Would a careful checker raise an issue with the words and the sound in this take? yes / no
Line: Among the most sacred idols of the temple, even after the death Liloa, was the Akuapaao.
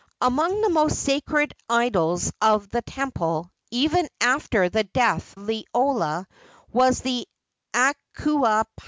no